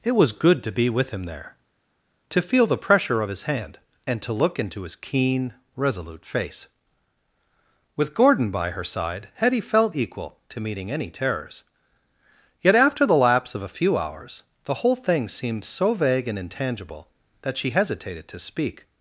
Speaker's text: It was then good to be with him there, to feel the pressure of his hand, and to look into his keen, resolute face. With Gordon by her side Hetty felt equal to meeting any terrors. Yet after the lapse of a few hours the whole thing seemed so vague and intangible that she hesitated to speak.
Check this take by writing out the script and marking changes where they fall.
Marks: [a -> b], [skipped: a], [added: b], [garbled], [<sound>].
It was [skipped: then] good to be with him there, to feel the pressure of his hand, and to look into his keen, resolute face. With Gordon by her side Hetty felt equal to meeting any terrors. Yet after the lapse of a few hours the whole thing seemed so vague and intangible that she hesitated to speak.